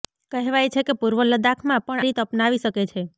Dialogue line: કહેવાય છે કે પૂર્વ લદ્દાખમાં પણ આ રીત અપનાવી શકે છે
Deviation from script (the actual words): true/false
true